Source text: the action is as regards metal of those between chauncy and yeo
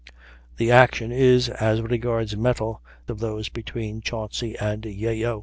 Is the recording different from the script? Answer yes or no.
no